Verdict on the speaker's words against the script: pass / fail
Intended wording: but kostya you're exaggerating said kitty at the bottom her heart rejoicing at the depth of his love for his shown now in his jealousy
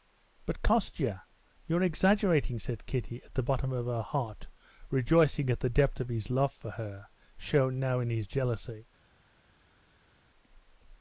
fail